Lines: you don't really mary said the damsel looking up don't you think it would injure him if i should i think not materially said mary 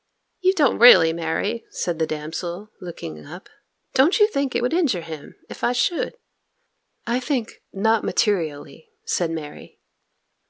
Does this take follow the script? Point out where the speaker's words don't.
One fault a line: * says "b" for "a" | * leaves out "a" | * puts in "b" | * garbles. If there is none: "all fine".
all fine